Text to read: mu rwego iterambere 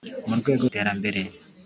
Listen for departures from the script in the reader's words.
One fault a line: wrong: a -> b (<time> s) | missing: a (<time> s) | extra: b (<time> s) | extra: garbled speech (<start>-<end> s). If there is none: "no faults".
no faults